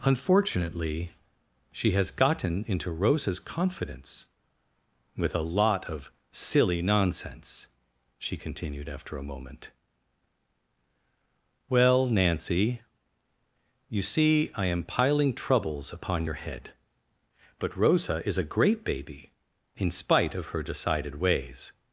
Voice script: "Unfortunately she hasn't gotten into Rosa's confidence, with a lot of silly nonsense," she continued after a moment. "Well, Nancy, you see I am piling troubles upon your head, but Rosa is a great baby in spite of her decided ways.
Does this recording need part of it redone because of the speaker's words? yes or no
yes